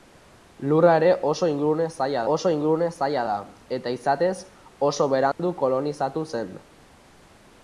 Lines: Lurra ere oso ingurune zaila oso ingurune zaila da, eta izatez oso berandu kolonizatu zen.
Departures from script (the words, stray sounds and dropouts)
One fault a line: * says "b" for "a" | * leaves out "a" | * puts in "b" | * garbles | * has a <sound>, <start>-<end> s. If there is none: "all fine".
* has a dropout, 5.3-5.4 s